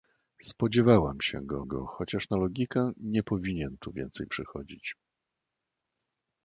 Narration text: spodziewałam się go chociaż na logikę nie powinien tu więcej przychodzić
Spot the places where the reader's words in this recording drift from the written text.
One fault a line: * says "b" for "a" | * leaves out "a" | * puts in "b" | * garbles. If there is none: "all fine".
* puts in "go"